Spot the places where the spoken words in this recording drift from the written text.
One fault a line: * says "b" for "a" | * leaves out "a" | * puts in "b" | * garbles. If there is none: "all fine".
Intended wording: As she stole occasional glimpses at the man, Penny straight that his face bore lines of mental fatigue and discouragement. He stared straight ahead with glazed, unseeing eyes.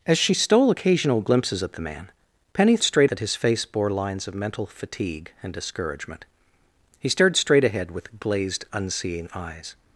all fine